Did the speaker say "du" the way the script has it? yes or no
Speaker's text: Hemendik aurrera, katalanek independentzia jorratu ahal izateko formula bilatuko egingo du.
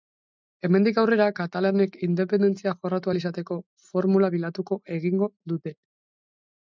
no